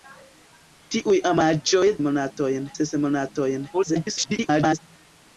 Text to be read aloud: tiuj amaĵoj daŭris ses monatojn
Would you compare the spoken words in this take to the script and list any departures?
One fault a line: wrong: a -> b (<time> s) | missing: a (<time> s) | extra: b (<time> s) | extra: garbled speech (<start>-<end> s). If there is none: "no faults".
wrong: daŭris -> monatojn (2.1 s)
extra: garbled speech (3.7-4.8 s)